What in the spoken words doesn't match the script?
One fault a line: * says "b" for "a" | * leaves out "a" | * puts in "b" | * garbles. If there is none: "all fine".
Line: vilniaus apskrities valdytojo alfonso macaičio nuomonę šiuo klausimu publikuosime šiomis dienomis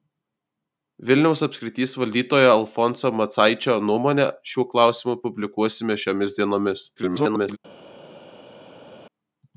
* garbles